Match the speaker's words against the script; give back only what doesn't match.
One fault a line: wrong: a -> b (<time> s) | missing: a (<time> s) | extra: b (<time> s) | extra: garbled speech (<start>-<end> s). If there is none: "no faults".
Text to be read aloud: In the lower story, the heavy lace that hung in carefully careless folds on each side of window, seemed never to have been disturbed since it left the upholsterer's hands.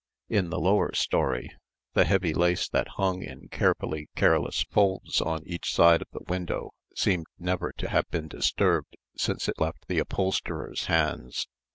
extra: the (6.1 s)